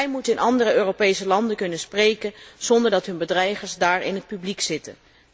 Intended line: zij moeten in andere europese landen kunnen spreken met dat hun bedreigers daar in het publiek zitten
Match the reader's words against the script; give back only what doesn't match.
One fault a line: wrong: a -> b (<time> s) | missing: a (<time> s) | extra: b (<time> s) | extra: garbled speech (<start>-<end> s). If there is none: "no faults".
wrong: met -> zonder (2.6 s)